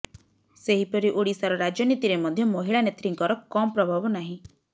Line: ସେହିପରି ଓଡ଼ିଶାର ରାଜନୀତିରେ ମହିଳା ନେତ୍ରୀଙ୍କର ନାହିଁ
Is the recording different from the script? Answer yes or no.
yes